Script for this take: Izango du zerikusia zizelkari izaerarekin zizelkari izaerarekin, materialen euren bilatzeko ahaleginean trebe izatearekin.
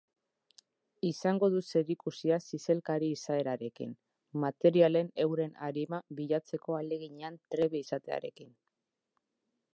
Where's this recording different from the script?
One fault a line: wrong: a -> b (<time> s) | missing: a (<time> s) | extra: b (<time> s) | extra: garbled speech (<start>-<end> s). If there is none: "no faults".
missing: zizelkari izaerarekin (3.9 s)
extra: arima (5.7 s)